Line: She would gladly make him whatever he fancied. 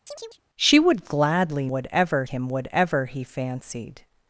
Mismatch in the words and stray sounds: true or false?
true